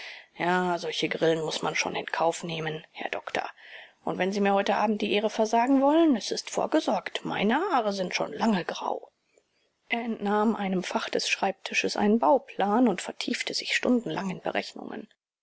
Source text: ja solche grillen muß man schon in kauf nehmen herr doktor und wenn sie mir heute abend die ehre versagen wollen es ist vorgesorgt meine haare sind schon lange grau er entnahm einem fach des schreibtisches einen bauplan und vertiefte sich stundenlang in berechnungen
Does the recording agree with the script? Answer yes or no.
yes